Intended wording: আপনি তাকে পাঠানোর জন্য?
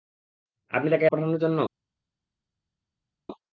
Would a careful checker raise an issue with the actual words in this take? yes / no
no